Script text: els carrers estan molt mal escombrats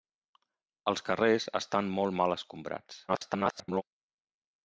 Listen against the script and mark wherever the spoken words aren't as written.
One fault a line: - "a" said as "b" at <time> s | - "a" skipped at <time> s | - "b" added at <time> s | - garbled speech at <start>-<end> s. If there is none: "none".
- garbled speech at 3.1-3.8 s